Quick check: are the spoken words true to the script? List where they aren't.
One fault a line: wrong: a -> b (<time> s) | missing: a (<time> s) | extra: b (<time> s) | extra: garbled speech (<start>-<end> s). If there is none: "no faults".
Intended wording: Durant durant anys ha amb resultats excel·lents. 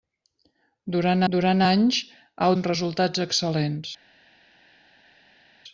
no faults